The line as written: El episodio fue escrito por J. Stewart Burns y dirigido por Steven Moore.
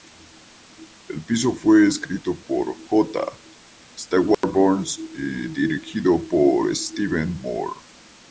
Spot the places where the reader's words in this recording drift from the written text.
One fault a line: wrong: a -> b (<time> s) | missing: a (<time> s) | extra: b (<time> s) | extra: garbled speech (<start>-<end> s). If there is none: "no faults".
no faults